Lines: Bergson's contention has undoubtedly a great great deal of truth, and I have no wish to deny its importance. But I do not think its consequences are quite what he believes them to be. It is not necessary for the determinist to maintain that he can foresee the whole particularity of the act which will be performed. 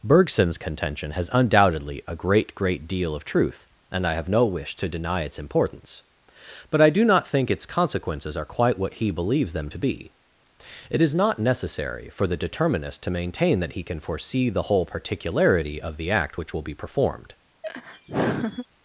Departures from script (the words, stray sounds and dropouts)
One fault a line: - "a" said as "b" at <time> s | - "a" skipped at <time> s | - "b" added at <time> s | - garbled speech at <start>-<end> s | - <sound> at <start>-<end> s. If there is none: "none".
- laugh at 17.6-18.7 s